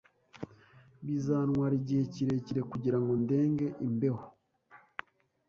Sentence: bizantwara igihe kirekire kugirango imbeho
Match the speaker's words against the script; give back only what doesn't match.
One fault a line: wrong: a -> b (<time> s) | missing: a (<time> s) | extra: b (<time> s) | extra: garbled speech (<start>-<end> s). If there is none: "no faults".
extra: ndenge (3.2 s)